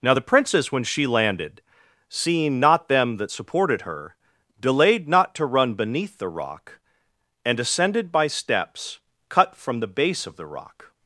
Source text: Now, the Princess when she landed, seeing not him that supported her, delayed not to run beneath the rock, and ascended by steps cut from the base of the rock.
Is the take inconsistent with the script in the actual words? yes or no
yes